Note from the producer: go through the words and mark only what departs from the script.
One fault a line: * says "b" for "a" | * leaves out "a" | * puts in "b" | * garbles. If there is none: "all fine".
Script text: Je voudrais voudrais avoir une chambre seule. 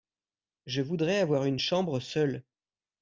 * leaves out "voudrais"